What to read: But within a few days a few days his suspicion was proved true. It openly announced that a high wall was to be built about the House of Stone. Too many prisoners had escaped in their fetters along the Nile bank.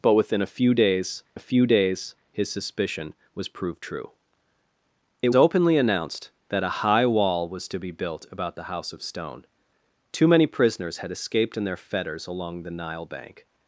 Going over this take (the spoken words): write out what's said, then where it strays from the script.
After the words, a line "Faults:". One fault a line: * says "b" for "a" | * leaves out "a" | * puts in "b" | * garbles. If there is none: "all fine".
But within a few days a few days his suspicion was proved true. It openly announced that a high wall was to be built about the House of Stone. Too many prisoners had escaped in their fetters along the Nile bank.
Faults:
all fine